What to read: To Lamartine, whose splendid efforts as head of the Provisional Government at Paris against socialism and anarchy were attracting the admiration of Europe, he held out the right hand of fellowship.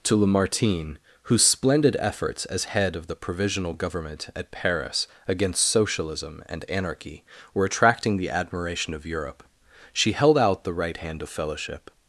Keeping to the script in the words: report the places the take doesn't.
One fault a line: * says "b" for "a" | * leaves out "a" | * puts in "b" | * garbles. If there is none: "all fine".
* says "she" for "he"